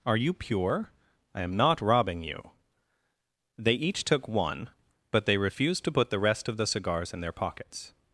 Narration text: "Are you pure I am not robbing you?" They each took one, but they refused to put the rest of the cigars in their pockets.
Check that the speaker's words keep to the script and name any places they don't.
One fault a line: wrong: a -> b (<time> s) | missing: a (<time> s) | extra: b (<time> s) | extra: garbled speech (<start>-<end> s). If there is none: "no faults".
no faults